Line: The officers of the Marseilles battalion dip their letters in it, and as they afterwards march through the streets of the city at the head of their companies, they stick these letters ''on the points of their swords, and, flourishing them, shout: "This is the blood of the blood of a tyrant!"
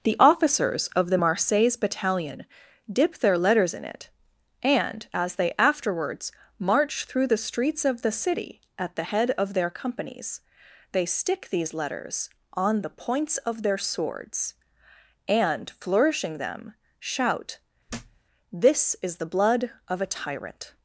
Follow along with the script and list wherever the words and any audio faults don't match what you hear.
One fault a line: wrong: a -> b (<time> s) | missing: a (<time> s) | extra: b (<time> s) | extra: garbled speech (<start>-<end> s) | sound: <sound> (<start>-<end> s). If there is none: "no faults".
sound: thud (17.9-18.2 s)
missing: the blood of (20.0 s)